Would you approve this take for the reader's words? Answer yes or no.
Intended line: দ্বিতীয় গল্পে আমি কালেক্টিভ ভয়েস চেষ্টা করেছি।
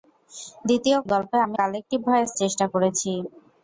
yes